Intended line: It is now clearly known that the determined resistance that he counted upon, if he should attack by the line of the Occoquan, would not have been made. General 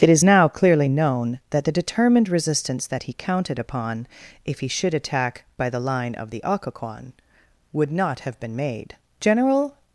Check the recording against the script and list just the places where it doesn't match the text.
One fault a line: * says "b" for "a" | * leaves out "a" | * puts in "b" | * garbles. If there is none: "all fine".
all fine